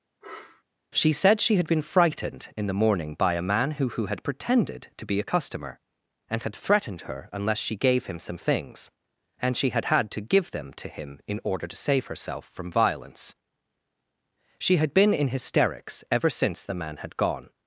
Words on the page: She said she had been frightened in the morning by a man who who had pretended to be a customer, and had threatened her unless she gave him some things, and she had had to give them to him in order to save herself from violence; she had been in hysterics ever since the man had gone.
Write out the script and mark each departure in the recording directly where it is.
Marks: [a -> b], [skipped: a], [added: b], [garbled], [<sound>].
[sniff] She said she had been frightened in the morning by a man who who had pretended to be a customer, and had threatened her unless she gave him some things, and she had had to give them to him in order to save herself from violence; she had been in hysterics ever since the man had gone.